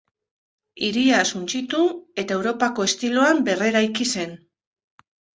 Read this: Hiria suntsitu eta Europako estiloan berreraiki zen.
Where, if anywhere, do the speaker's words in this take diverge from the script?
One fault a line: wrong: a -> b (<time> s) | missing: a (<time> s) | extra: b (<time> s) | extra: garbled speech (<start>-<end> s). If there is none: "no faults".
no faults